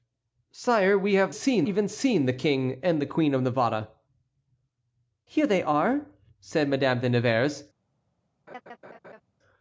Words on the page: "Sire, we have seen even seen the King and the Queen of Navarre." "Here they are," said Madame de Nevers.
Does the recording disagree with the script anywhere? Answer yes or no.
no